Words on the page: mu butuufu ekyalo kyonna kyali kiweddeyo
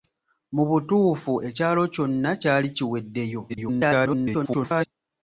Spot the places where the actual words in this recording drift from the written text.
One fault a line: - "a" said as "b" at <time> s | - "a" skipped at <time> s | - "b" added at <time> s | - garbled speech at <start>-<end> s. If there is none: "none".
- garbled speech at 3.5-4.9 s